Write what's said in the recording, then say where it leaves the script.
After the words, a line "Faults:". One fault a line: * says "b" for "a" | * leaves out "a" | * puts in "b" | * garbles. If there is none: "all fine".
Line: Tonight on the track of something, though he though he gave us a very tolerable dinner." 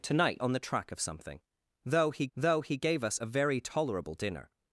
Tonight on the track of something, though he though he gave us a very tolerable dinner."
Faults:
all fine